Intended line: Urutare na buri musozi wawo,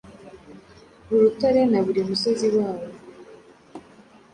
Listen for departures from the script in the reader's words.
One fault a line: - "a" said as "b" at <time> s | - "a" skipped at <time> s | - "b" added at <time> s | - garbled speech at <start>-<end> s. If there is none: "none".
none